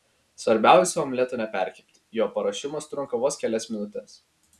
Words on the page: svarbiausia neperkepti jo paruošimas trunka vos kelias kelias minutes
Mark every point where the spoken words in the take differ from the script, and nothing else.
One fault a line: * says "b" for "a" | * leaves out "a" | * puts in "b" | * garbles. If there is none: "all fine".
* puts in "omleto"
* leaves out "kelias"